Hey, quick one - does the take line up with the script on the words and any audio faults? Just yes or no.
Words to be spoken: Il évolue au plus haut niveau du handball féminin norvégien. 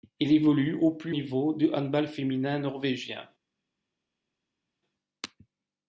no